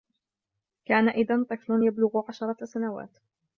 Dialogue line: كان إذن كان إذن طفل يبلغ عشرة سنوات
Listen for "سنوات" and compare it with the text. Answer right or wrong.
right